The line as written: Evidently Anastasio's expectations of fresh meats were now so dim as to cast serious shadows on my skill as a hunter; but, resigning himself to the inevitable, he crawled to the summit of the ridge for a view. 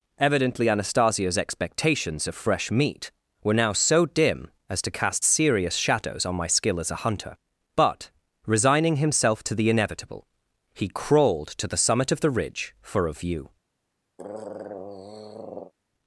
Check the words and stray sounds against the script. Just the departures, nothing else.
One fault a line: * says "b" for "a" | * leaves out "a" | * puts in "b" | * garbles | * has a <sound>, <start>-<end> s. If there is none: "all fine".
* says "meat" for "meats"
* has a throat clearing, 14.2-15.7 s